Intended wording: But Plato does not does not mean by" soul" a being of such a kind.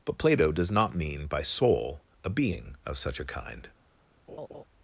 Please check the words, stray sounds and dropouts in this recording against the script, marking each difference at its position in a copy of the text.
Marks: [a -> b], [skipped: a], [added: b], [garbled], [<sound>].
But Plato does not [skipped: does not] mean by" soul" a being of such a kind. [laugh]